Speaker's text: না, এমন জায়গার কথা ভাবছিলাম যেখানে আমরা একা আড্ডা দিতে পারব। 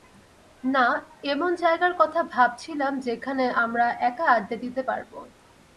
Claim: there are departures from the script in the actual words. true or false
false